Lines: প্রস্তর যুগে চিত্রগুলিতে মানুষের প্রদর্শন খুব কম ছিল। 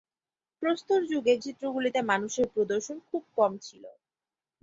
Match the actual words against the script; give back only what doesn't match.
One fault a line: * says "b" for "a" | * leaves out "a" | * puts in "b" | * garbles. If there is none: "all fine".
all fine